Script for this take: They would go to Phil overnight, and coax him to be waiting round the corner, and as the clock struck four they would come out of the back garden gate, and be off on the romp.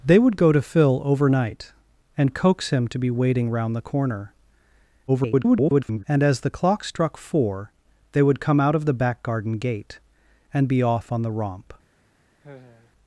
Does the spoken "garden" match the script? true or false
true